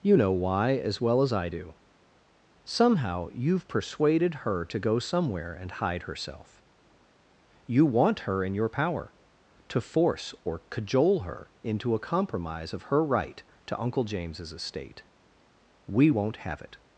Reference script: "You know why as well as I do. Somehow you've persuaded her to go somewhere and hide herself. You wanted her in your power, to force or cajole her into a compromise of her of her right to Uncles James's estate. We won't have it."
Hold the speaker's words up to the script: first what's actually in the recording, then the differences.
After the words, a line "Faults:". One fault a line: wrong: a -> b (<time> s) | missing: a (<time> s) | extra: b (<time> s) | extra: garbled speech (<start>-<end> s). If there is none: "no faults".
"You know why as well as I do. Somehow you've persuaded her to go somewhere and hide herself. You want her in your power, to force or cajole her into a compromise of her right to Uncle James's estate. We won't have it."
Faults:
wrong: wanted -> want (7.9 s)
missing: of her (13.0 s)
wrong: Uncles -> Uncle (13.8 s)